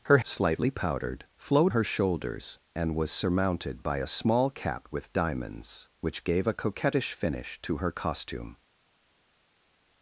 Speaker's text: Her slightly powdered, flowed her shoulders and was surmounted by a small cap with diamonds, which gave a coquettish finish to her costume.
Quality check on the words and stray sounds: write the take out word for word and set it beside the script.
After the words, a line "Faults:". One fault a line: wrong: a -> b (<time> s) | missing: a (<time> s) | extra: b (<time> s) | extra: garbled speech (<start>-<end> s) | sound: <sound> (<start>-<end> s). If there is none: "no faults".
Her slightly powdered, flowed her shoulders and was surmounted by a small cap with diamonds, which gave a coquettish finish to her costume.
Faults:
no faults